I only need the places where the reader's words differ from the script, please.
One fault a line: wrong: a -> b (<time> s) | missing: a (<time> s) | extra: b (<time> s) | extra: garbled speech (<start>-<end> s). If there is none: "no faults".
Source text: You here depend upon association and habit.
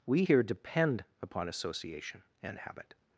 wrong: You -> We (0.1 s)